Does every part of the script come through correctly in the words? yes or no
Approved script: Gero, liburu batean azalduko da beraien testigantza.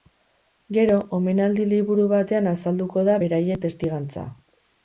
no